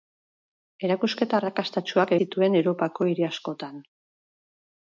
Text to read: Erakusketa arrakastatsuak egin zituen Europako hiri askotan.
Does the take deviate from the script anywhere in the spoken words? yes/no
yes